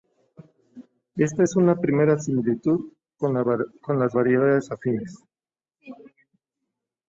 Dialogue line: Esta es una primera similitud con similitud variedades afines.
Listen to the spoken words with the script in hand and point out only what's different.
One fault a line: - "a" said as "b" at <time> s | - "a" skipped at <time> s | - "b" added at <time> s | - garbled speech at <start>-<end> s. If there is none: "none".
- "similitud" said as "las" at 3.3 s